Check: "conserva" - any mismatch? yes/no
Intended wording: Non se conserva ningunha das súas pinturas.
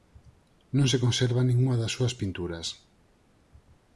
no